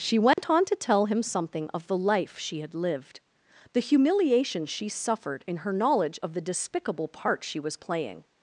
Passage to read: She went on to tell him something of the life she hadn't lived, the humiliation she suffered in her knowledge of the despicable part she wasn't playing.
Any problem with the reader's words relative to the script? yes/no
yes